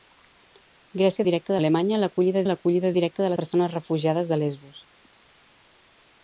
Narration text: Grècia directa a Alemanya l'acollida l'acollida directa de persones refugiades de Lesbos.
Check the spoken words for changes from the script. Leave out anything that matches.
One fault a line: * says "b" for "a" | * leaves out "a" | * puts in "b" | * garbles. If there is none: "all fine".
all fine